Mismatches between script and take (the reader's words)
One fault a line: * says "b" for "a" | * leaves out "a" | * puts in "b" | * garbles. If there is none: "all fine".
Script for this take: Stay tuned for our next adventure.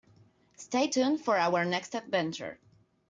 all fine